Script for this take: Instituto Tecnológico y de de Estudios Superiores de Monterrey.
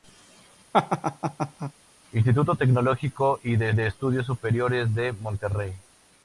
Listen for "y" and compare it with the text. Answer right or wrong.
right